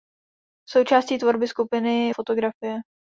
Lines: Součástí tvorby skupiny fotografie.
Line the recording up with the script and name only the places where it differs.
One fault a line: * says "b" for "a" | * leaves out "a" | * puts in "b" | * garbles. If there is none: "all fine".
all fine